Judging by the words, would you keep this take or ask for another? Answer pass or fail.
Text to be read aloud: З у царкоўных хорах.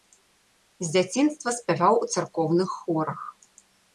fail